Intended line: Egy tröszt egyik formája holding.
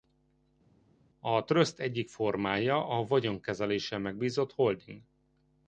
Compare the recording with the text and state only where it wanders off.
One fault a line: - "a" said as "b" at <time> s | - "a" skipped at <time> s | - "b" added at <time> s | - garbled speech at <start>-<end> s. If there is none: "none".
- "Egy" said as "A" at 1.2 s
- "a vagyonkezeléssel megbízott" added at 2.9 s